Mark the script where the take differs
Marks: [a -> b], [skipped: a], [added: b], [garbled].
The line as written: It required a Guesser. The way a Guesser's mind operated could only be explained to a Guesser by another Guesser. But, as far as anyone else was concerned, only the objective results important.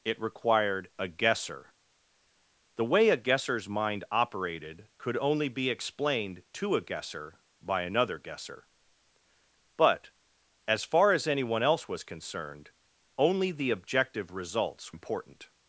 It required a Guesser. The way a Guesser's mind operated could only be explained to a Guesser by another Guesser. But, as far as anyone else was concerned, only the objective results important.